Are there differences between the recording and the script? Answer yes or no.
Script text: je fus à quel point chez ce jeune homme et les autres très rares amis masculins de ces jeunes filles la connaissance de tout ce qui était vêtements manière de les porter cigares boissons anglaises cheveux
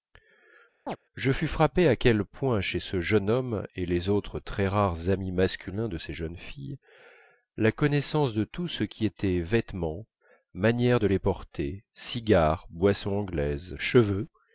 yes